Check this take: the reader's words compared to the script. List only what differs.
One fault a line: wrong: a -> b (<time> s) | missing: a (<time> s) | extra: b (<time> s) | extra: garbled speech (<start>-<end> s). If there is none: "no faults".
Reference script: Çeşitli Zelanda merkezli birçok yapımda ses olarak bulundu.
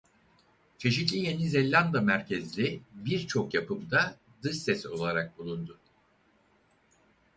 extra: Yeni (1.2 s)
extra: dış (4.4 s)